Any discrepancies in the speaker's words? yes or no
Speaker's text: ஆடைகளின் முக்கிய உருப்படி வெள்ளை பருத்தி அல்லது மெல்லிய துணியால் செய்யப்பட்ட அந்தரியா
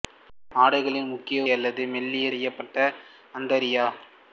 yes